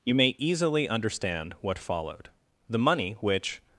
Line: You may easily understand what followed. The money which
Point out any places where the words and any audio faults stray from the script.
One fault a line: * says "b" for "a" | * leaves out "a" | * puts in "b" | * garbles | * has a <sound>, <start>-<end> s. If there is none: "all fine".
all fine